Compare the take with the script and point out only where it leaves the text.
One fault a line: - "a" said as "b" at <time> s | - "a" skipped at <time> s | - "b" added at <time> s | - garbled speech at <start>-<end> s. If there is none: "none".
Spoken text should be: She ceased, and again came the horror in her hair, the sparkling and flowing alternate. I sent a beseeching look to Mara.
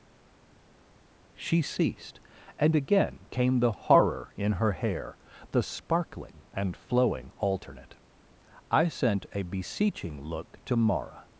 none